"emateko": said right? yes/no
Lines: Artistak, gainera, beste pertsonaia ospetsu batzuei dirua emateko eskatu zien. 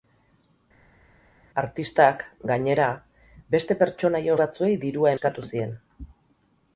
no